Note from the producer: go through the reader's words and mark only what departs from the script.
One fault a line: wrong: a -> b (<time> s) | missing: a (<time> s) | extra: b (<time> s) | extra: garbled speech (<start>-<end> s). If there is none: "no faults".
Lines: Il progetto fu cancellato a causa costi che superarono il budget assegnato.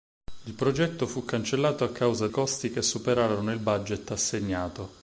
no faults